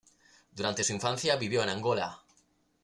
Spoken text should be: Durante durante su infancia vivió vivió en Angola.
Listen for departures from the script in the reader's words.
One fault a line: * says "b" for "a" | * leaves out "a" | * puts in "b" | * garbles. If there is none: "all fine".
* leaves out "durante"
* leaves out "vivió"